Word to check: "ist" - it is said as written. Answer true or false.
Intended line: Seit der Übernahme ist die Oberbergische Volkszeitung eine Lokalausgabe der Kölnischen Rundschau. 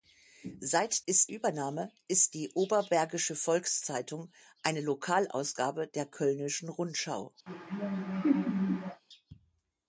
true